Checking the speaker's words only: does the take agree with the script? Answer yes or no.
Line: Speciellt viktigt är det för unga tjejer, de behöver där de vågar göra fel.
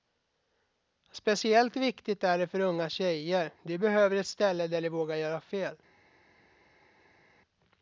no